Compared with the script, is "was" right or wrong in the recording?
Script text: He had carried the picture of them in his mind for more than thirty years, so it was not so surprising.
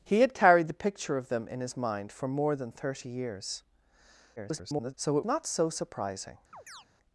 wrong